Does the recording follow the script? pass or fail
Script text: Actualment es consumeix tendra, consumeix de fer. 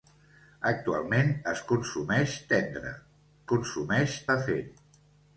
pass